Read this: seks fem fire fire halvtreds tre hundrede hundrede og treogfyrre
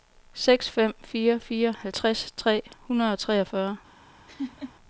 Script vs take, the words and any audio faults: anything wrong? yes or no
yes